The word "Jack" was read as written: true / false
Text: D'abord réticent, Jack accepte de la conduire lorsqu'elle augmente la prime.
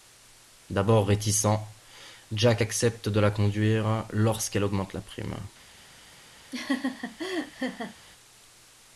true